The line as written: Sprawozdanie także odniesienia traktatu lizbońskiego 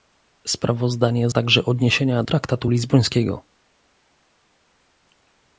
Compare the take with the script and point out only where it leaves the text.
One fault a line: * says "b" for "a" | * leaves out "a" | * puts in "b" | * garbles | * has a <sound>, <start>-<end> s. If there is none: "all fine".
all fine